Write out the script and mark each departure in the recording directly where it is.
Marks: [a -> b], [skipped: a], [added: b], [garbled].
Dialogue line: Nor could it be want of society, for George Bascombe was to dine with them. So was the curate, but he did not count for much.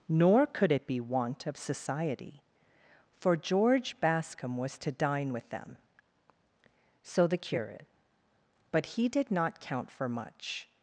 Nor could it be want of society, for George Bascombe was to dine with them. So [skipped: was] the curate, but he did not count for much.